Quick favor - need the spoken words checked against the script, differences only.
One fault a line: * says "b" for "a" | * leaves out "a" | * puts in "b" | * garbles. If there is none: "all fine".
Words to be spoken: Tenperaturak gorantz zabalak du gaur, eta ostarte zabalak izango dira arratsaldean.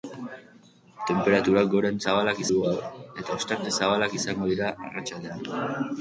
all fine